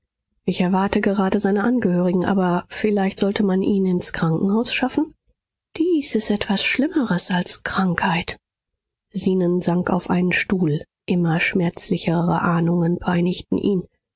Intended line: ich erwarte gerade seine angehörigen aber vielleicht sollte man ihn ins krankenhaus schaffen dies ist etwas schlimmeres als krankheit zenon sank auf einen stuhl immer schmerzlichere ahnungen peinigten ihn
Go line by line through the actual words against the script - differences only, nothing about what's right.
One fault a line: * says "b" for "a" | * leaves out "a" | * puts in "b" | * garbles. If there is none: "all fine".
all fine